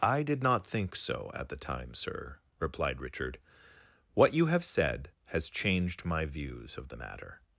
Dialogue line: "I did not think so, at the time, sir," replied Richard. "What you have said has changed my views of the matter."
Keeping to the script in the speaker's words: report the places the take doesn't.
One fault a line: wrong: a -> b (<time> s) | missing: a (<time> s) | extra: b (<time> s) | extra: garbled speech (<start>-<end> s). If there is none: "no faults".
no faults